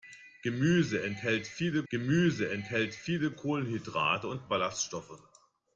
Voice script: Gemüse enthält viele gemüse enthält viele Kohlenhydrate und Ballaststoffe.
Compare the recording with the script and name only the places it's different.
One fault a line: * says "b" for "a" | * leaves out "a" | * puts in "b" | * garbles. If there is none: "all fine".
all fine